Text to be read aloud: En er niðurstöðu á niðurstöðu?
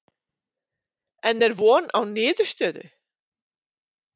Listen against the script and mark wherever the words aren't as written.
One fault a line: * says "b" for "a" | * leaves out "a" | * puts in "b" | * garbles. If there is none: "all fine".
* says "von" for "niðurstöðu"